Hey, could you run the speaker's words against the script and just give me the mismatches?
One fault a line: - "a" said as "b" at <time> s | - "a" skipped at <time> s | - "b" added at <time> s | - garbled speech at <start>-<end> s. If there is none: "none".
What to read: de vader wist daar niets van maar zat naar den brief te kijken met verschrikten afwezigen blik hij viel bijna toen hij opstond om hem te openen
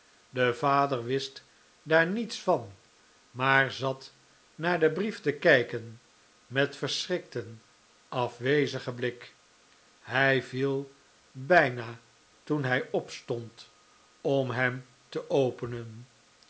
none